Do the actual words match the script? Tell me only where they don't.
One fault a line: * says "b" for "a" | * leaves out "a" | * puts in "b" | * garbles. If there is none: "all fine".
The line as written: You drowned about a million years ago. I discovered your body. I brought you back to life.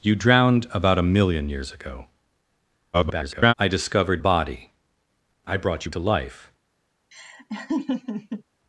* garbles
* leaves out "your"
* leaves out "back"